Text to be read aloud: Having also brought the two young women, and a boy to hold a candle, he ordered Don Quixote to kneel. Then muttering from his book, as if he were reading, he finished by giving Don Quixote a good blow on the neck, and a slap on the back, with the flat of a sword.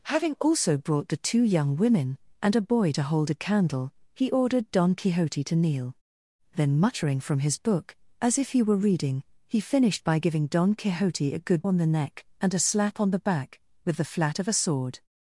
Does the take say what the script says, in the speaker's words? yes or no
no